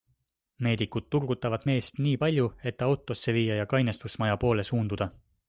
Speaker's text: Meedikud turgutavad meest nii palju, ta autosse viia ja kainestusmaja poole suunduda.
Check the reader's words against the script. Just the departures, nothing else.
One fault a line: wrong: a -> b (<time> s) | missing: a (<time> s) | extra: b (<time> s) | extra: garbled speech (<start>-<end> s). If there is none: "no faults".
extra: et (2.6 s)